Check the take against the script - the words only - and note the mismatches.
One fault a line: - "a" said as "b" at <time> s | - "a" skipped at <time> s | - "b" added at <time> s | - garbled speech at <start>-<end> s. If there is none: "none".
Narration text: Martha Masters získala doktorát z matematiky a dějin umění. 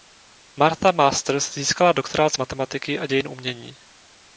none